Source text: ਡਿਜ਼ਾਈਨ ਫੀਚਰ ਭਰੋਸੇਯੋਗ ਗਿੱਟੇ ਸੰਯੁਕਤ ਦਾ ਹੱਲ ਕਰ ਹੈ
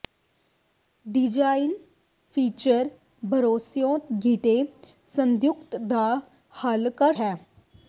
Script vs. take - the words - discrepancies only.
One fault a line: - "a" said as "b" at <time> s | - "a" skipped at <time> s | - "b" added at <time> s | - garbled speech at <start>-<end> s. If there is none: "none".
none